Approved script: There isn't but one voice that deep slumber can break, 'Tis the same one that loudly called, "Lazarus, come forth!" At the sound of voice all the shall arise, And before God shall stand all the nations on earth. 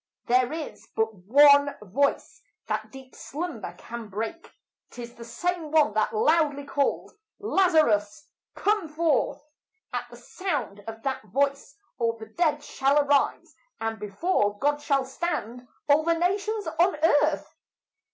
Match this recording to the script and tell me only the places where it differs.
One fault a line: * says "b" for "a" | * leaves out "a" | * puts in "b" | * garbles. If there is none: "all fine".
* says "is" for "isn't"
* puts in "that"
* puts in "dead"